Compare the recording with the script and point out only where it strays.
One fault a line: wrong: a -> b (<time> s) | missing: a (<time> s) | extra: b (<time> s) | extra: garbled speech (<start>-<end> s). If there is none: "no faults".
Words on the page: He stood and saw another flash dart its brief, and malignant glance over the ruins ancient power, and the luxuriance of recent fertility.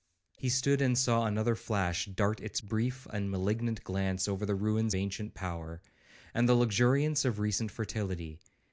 no faults